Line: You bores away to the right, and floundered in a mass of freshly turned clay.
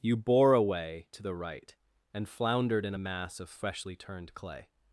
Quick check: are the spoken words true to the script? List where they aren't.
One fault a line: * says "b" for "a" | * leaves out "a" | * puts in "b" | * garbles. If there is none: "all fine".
* says "bore" for "bores"